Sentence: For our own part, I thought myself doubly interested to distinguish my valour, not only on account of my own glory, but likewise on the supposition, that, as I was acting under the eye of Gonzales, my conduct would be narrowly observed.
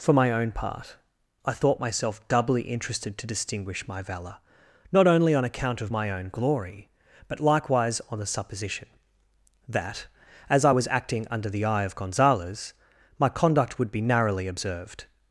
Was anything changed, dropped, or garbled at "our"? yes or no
yes